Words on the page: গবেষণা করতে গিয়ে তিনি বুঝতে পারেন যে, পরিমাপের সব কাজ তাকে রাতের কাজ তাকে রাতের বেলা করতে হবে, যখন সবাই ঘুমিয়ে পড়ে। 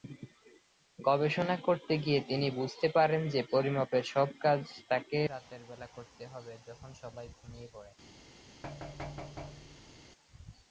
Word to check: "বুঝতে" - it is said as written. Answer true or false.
true